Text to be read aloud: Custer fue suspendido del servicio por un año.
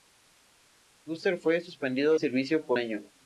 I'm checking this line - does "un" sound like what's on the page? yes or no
no